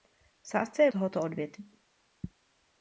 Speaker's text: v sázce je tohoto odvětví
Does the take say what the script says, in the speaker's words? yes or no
yes